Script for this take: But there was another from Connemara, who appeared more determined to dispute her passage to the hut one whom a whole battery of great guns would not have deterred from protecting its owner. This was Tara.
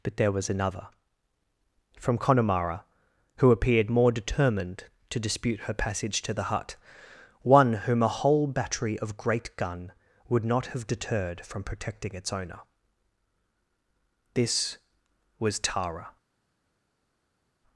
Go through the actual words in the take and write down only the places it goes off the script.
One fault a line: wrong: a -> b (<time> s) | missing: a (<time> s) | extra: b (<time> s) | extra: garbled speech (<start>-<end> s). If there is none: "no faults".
wrong: guns -> gun (9.6 s)